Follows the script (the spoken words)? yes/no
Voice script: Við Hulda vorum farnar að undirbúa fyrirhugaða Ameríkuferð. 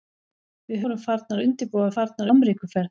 no